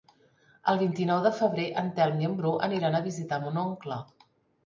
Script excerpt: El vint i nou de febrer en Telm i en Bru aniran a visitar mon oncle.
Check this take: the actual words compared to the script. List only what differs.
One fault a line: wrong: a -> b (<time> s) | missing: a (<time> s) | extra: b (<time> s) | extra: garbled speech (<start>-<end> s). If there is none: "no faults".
no faults